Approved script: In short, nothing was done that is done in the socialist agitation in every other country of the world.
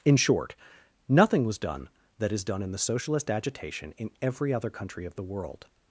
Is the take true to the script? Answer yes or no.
yes